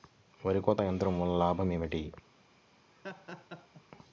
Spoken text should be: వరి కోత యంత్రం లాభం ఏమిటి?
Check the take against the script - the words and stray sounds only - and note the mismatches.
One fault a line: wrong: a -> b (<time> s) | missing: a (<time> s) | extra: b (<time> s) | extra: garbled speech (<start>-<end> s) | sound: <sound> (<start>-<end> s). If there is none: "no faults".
extra: వలన (1.2 s)
sound: laugh (2.9-3.8 s)